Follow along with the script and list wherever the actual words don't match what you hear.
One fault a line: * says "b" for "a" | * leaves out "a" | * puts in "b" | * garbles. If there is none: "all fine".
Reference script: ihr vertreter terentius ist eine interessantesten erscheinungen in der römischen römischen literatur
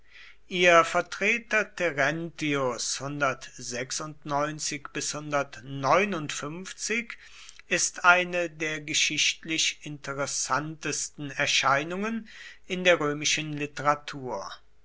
* puts in "der geschichtlich"
* leaves out "römischen"